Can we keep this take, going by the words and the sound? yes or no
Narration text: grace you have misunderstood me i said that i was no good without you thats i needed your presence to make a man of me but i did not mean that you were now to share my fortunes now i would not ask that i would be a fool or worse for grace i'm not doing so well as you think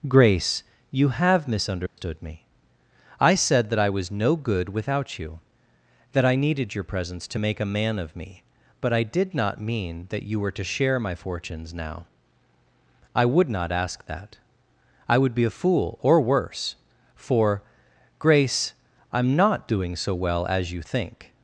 no